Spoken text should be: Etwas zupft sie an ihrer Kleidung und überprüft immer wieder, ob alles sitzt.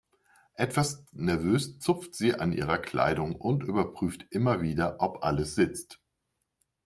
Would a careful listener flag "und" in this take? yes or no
no